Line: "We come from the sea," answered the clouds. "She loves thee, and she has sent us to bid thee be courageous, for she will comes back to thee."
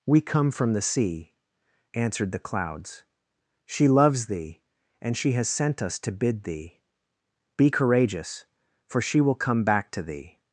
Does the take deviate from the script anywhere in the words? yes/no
yes